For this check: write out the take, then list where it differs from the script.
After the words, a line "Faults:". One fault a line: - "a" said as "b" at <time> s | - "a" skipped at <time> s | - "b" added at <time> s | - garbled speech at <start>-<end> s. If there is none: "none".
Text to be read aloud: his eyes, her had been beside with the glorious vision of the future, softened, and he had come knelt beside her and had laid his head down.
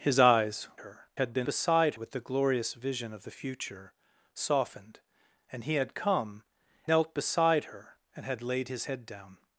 his eyes, her had been beside with the glorious vision of the future, softened, and he had come knelt beside her and had laid his head down.
Faults:
none